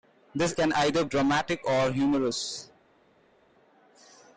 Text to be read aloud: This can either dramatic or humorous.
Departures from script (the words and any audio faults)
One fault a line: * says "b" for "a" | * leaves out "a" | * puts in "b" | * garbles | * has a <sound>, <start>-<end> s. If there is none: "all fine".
all fine